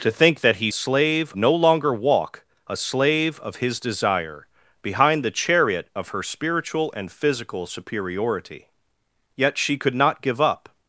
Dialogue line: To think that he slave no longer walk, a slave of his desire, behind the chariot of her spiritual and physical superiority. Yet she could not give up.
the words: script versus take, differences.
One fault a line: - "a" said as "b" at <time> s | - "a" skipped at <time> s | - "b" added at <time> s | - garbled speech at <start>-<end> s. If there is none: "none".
none